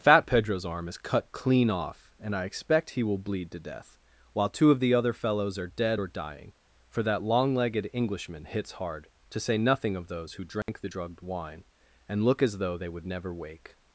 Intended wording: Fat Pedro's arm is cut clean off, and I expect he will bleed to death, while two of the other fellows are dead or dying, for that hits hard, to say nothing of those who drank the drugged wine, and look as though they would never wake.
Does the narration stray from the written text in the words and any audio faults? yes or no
yes